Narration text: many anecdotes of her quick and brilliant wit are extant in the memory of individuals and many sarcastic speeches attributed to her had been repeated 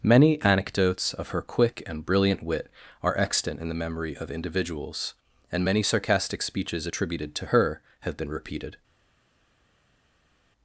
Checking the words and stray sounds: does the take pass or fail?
fail